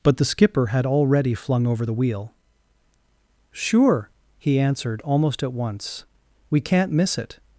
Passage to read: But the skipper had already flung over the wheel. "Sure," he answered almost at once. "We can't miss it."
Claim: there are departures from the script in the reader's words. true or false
false